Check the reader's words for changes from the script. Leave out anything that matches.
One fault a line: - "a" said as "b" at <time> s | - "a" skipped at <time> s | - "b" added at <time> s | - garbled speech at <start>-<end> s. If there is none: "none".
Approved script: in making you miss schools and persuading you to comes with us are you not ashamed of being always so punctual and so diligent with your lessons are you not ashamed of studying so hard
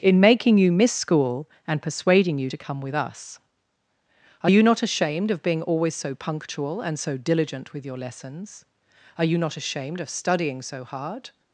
- "schools" said as "school" at 0.9 s
- "comes" said as "come" at 2.6 s